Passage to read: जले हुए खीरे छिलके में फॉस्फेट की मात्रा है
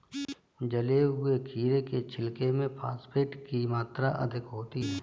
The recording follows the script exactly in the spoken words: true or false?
false